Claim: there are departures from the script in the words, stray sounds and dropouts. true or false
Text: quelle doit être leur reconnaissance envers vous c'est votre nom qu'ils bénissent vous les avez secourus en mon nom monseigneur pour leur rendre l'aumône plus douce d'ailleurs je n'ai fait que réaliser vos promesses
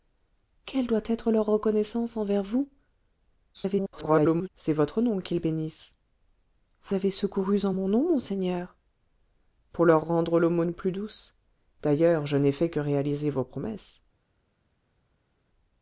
true